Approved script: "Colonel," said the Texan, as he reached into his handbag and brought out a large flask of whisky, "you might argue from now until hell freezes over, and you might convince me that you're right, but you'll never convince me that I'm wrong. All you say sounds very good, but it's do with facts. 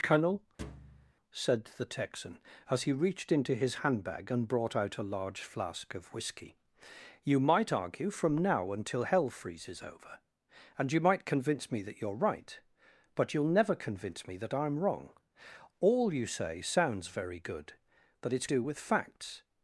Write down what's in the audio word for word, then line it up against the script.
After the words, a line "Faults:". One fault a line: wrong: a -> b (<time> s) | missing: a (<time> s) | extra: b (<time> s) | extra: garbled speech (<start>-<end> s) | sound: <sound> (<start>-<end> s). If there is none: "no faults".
"Colonel," said the Texan, as he reached into his handbag and brought out a large flask of whisky, "you might argue from now until hell freezes over, and you might convince me that you're right, but you'll never convince me that I'm wrong. All you say sounds very good, but it's do with facts.
Faults:
sound: thud (0.6-1.1 s)